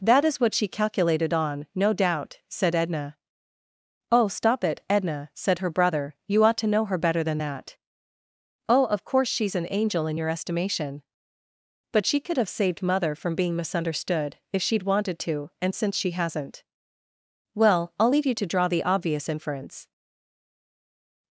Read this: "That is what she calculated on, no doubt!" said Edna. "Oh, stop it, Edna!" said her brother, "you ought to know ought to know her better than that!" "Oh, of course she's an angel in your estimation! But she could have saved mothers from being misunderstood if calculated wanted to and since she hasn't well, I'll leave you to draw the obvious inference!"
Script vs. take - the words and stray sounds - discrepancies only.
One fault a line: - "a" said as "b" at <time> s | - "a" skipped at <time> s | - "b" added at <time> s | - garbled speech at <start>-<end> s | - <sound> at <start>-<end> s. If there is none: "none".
- "ought to know" skipped at 6.8 s
- "mothers" said as "mother" at 12.8 s
- "calculated" said as "she'd" at 14.6 s